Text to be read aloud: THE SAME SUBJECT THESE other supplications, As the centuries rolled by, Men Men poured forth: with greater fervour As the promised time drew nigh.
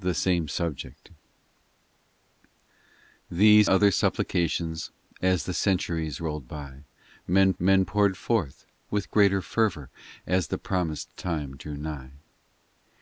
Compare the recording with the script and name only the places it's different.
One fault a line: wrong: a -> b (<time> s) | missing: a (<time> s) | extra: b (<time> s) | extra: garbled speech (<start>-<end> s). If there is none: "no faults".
no faults